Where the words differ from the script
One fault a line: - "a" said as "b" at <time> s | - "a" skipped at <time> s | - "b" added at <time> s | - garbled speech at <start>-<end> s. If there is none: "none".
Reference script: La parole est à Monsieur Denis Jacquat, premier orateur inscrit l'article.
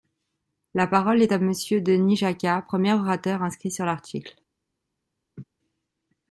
- "sur" added at 3.7 s